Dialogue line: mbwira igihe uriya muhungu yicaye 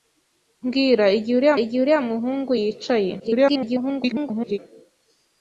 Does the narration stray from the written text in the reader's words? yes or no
yes